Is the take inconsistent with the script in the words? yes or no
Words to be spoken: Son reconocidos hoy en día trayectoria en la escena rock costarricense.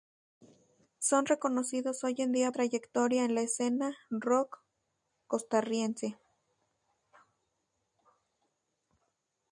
no